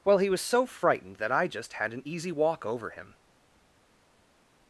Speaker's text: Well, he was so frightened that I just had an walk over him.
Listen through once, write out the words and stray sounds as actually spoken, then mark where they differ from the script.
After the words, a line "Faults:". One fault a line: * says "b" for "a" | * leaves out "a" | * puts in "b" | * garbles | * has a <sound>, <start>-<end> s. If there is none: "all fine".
Well, he was so frightened that I just had an easy walk over him.
Faults:
* puts in "easy"